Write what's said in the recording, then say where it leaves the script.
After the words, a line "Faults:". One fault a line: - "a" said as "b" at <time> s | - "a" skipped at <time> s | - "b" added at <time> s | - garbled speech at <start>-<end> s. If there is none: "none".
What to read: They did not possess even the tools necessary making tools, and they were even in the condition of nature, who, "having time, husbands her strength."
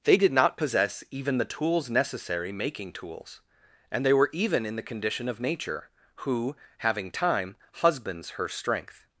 They did not possess even the tools necessary making tools, and they were even in the condition of nature, who, "having time, husbands her strength."
Faults:
none